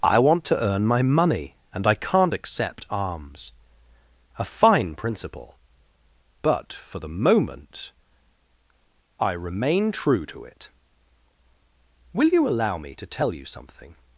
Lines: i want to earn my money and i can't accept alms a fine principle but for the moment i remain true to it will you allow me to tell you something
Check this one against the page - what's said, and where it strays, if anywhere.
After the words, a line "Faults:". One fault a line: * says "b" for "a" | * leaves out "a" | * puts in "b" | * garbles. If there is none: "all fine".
i want to earn my money and i can't accept alms a fine principle but for the moment i remain true to it will you allow me to tell you something
Faults:
all fine